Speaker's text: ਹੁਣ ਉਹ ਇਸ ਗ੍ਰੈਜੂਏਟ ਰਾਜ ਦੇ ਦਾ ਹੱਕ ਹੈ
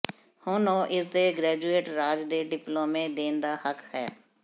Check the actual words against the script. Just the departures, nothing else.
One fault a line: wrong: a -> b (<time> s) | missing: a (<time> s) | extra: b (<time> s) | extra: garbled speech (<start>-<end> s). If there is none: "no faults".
extra: ਦੇ (1.1 s)
extra: ਡਿਪਲੋਮੇ ਦੇਣ (2.5 s)